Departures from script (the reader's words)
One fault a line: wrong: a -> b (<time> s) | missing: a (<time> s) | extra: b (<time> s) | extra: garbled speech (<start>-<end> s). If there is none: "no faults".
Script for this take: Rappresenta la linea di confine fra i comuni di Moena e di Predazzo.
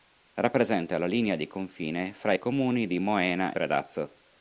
missing: e di (3.5 s)